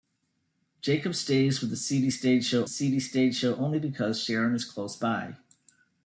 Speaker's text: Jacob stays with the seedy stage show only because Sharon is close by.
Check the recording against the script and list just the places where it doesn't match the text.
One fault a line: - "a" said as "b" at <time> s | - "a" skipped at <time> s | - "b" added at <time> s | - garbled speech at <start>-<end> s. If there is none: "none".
- "seedy stage show" added at 2.7 s